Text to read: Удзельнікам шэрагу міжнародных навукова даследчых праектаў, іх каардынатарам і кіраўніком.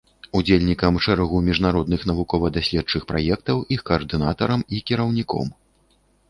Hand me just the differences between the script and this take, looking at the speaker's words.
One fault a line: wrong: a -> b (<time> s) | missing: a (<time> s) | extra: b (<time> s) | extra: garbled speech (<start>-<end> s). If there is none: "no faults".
no faults